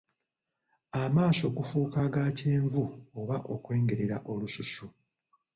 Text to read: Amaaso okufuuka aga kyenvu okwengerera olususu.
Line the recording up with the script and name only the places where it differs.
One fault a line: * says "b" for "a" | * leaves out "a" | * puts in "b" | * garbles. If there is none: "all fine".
* puts in "oba"